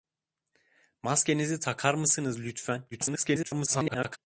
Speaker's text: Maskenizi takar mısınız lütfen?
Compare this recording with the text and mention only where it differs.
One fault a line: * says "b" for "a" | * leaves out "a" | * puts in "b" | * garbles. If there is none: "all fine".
* garbles